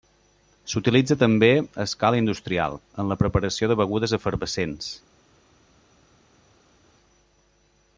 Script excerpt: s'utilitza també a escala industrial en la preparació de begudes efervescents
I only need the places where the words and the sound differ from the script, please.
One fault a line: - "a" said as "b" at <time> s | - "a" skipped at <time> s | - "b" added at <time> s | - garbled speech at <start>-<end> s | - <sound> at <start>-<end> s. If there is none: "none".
none